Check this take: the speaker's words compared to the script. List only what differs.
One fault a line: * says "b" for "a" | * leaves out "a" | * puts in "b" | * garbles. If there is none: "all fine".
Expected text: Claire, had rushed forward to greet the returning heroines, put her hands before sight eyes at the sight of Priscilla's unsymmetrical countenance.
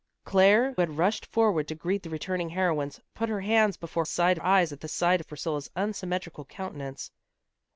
all fine